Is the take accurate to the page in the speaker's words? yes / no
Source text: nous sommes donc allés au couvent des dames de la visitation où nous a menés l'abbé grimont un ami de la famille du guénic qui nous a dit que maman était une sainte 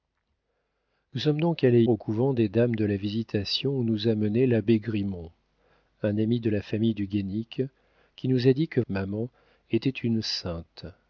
yes